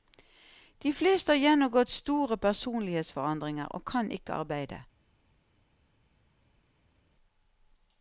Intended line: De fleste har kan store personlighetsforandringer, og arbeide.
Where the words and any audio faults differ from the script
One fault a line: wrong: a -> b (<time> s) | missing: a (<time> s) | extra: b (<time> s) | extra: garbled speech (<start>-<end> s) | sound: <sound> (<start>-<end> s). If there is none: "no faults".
wrong: kan -> gjennomgått (1.4 s)
extra: kan ikke (3.9 s)